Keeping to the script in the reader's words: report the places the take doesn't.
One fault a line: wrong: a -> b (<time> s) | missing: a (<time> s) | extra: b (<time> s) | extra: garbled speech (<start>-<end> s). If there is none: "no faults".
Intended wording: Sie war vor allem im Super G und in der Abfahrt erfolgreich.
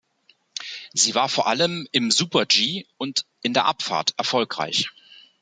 no faults